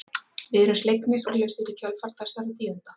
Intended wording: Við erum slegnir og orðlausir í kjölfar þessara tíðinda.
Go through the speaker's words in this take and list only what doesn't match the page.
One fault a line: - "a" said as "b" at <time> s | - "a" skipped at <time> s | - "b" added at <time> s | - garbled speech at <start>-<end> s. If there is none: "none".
- "og" skipped at 1.3 s